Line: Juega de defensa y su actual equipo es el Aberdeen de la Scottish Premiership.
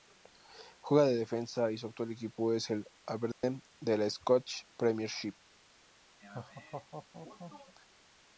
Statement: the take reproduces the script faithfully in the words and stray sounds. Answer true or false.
false